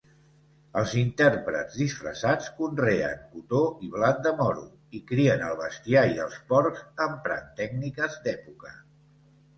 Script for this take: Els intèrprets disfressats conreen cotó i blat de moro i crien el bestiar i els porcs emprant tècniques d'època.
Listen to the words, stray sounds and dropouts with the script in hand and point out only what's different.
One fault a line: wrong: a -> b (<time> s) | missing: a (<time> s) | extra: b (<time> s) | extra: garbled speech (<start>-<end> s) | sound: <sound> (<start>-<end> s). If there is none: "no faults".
no faults